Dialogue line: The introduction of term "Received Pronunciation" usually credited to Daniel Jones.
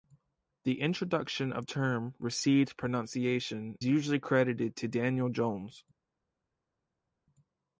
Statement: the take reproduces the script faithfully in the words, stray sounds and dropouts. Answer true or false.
true